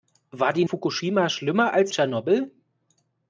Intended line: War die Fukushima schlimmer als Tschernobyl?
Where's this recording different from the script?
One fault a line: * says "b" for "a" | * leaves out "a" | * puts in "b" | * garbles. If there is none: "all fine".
all fine